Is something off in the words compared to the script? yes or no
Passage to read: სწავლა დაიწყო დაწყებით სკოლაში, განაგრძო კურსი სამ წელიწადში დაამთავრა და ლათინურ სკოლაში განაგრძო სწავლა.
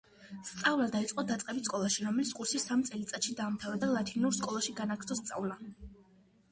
yes